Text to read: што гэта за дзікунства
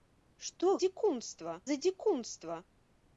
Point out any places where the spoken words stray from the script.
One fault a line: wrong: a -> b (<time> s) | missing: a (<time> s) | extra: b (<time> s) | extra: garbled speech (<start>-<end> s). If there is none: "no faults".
wrong: гэта -> дзікунства (0.9 s)